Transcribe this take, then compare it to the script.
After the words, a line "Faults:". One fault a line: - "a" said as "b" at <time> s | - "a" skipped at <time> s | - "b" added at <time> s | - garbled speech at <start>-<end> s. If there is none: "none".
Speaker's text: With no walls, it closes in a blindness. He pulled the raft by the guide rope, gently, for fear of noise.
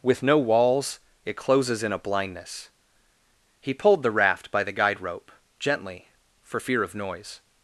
With no walls, it closes in a blindness. He pulled the raft by the guide rope, gently, for fear of noise.
Faults:
none